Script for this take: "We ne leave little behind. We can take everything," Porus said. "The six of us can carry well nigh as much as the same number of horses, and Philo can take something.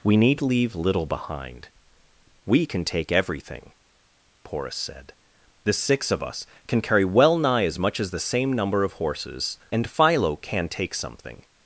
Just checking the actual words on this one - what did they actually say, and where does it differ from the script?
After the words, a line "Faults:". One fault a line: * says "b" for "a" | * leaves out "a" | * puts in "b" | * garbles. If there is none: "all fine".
"We need leave little behind. We can take everything," Porus said. "The six of us can carry well nigh as much as the same number of horses, and Philo can take something.
Faults:
* says "need" for "ne"